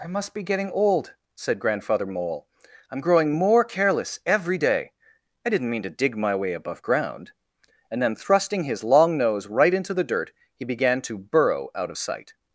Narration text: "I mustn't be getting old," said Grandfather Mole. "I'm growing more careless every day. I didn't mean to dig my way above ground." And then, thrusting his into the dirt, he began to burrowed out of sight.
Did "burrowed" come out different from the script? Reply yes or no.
yes